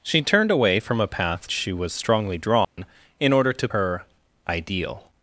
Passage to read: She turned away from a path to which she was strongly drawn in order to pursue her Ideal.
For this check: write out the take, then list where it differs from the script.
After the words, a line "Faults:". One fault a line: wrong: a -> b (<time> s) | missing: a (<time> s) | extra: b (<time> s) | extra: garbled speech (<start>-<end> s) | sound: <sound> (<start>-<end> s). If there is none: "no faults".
She turned away from a path she was strongly drawn in order to her Ideal.
Faults:
missing: to which (1.5 s)
sound: dropout (2.6-2.8 s)
missing: pursue (3.7 s)